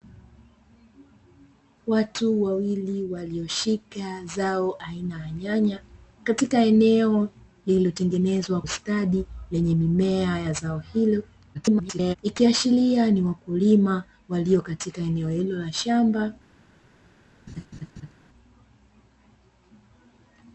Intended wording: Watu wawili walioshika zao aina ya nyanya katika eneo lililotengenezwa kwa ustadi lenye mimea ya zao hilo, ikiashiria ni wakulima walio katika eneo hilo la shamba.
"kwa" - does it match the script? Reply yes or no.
no